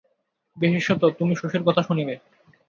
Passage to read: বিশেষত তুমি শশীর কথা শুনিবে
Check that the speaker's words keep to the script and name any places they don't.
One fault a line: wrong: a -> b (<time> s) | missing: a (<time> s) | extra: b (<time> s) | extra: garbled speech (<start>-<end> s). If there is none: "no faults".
no faults